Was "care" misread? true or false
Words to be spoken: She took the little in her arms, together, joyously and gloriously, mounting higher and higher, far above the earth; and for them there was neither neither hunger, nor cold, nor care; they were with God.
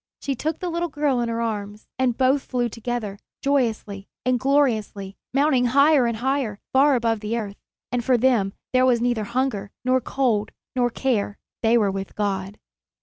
false